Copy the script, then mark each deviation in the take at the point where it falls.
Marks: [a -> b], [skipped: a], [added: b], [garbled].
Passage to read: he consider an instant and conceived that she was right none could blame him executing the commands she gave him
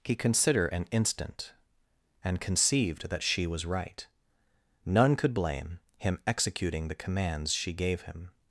he consider an instant and conceived that she was right none could blame him executing the commands she gave him